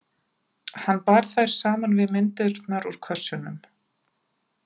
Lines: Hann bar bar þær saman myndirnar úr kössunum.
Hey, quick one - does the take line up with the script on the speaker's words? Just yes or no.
no